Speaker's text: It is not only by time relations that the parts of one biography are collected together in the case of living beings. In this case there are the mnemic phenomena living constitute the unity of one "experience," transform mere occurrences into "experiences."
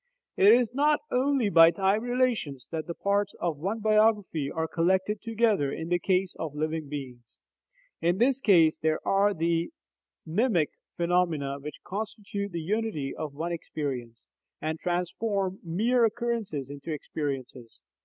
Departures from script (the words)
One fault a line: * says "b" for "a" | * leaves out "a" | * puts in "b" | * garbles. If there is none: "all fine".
* says "which" for "living"
* puts in "and"